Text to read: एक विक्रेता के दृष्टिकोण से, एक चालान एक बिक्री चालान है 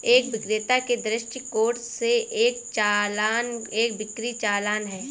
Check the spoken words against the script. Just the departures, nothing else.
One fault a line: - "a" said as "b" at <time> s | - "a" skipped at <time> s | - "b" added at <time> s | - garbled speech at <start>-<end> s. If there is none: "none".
none